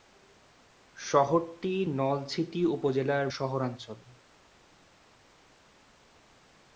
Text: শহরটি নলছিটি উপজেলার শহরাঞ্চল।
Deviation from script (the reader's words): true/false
false